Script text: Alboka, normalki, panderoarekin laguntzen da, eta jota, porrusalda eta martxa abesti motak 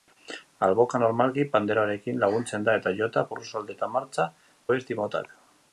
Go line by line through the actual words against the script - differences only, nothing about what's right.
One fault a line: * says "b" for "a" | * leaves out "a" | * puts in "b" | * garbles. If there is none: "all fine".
all fine